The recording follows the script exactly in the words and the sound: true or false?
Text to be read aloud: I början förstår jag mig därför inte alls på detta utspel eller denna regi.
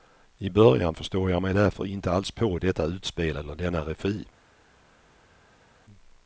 true